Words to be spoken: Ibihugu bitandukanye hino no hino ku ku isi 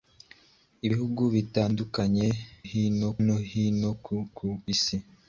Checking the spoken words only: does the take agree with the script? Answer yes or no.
yes